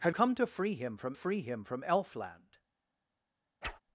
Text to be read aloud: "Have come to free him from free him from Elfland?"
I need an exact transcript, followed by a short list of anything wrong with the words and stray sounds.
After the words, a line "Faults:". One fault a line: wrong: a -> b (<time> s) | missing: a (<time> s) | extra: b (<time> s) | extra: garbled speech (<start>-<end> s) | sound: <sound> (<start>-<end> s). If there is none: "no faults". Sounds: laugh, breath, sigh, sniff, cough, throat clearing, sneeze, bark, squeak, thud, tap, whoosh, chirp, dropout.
"Have come to free him from free him from Elfland?"
Faults:
sound: whoosh (3.6-3.8 s)